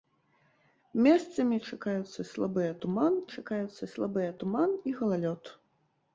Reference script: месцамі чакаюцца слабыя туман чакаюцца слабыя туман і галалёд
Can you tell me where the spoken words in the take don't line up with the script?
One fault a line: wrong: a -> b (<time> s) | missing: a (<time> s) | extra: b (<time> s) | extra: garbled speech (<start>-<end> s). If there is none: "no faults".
no faults